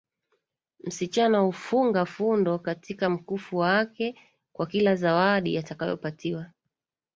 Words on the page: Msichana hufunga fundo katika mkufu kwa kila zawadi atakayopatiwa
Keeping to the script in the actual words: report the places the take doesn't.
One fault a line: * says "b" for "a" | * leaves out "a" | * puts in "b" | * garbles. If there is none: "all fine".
* puts in "wake"